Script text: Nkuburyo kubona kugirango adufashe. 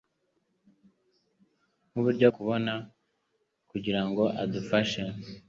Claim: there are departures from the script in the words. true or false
false